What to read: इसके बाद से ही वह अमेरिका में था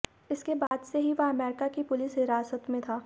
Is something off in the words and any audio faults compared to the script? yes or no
yes